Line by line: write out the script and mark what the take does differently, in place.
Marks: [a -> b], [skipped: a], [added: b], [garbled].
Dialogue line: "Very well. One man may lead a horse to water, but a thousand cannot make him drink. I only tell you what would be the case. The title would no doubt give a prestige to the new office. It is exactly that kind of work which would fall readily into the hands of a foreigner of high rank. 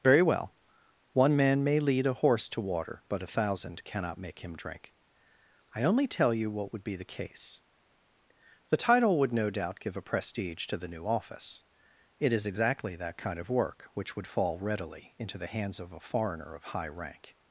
"Very well. One man may lead a horse to water, but a thousand cannot make him drink. I only tell you what would be the case. The title would no doubt give a prestige to the new office. It is exactly that kind of work which would fall readily into the hands of a foreigner of high rank.